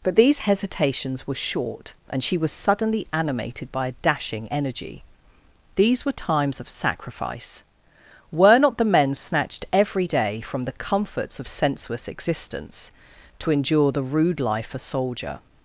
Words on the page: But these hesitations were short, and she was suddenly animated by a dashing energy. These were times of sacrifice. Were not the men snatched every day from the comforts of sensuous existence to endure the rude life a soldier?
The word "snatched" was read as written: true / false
true